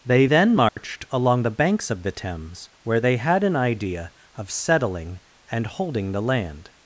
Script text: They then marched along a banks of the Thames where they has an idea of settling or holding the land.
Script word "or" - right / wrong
wrong